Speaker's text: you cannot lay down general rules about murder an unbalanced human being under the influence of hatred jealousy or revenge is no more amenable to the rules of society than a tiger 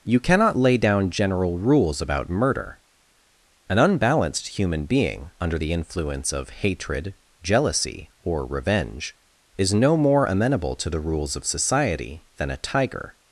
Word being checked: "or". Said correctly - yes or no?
yes